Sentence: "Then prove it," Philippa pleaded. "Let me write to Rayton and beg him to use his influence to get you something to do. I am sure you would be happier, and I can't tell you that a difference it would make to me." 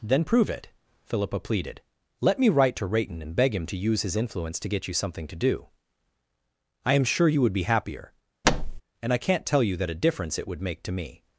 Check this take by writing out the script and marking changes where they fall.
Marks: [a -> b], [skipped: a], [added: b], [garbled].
"Then prove it," Philippa pleaded. "Let me write to Rayton and beg him to use his influence to get you something to do. I am sure you would be happier, and I can't tell you that a difference it would make to me."